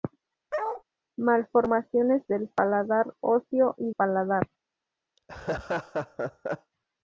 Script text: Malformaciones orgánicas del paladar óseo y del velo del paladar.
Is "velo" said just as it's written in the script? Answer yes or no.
no